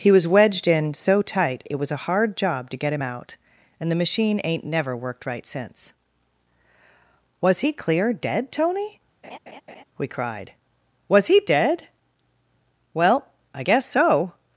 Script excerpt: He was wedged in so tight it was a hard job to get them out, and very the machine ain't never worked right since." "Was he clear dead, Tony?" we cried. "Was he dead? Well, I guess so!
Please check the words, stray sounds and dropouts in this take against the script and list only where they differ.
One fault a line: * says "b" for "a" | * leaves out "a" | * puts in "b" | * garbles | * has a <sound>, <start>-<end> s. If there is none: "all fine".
* says "him" for "them"
* leaves out "very"
* has a laugh, 9.2-9.8 s